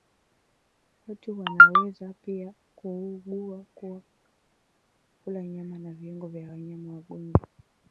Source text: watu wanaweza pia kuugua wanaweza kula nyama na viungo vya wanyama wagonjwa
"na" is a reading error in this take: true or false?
false